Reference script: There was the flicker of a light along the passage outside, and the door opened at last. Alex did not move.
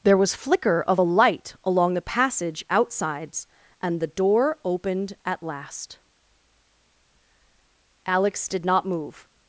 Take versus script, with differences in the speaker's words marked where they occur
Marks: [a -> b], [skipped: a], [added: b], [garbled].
There was [skipped: the] flicker of a light along the passage [outside, -> outsides] and the door opened at last. Alex did not move.